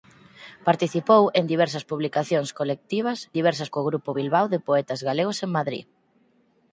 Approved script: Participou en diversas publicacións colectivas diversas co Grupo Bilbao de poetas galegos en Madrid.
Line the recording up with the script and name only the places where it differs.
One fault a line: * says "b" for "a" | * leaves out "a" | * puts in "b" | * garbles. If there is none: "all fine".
all fine